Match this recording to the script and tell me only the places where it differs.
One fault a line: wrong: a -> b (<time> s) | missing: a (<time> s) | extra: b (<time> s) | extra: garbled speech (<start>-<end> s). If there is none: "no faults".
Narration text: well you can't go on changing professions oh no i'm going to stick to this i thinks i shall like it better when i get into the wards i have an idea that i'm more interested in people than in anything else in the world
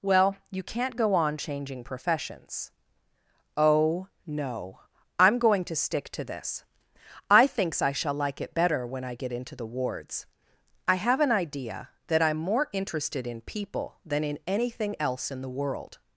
no faults